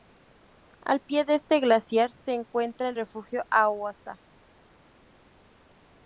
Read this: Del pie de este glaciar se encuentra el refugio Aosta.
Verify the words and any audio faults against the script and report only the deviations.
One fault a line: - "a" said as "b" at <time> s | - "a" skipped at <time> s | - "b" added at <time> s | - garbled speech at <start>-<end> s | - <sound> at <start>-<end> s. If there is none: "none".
- "Del" said as "Al" at 0.8 s